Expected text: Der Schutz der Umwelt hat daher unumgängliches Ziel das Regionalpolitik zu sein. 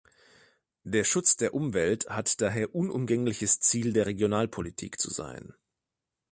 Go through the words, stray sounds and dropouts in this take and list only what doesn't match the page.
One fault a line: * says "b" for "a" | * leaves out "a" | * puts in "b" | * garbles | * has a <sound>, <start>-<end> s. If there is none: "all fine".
* says "der" for "das"